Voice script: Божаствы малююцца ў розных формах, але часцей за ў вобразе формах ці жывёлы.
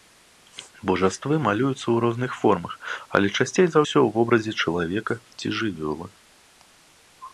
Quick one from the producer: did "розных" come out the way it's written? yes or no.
yes